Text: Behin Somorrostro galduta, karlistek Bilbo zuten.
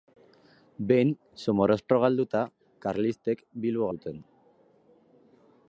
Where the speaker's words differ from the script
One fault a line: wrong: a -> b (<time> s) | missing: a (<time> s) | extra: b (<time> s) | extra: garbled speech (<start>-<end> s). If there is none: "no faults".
no faults